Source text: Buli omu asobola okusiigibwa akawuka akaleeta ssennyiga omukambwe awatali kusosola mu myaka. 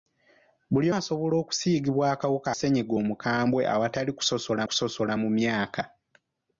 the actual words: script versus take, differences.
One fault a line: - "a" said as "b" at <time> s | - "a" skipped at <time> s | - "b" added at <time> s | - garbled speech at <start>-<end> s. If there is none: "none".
- "omu" skipped at 0.9 s
- "akaleeta" skipped at 2.5 s
- "kusosola" added at 4.7 s